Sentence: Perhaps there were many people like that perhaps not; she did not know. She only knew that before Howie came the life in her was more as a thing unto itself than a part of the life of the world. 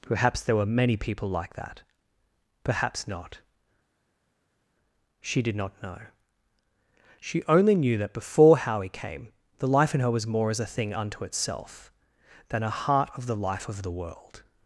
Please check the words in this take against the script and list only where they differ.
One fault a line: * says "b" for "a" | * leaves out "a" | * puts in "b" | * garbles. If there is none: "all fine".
* says "heart" for "part"